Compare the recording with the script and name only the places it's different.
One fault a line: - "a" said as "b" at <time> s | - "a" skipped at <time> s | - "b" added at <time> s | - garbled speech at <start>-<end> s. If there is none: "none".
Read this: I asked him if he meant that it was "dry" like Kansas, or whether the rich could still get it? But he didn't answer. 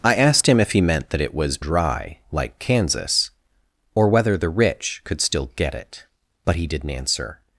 none